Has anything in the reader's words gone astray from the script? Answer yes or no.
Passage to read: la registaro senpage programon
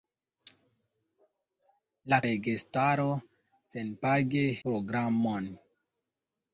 no